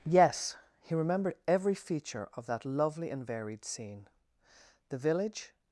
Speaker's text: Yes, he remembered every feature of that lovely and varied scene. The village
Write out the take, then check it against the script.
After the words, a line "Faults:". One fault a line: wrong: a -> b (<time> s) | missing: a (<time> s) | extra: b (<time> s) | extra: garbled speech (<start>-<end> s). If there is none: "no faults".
Yes, he remembered every feature of that lovely and varied scene. The village
Faults:
no faults